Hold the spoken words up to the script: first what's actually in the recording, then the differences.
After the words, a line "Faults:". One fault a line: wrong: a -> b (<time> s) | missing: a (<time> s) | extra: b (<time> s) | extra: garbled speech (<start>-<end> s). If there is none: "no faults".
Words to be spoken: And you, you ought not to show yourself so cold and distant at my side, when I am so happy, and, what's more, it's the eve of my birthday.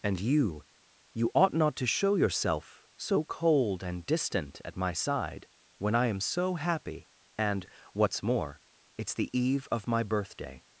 And you, you ought not to show yourself so cold and distant at my side, when I am so happy, and, what's more, it's the eve of my birthday.
Faults:
no faults